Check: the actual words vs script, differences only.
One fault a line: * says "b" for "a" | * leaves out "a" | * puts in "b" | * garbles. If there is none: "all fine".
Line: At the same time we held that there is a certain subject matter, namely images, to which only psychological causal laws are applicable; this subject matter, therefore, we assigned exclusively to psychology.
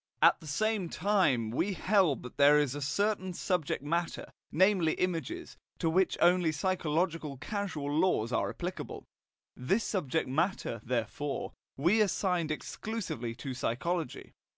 all fine